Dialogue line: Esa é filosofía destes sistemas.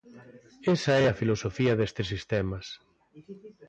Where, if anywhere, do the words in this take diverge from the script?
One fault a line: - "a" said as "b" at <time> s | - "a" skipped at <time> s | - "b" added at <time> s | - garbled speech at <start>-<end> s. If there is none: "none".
- "a" added at 1.1 s